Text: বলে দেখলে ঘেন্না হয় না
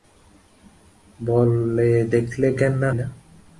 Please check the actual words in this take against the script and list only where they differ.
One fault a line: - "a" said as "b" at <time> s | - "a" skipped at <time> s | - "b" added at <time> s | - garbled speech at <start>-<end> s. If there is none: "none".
- "হয়" skipped at 2.9 s